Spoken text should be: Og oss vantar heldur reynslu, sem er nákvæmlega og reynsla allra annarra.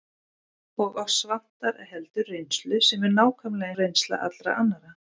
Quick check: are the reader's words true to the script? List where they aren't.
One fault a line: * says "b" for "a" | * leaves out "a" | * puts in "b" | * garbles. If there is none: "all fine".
all fine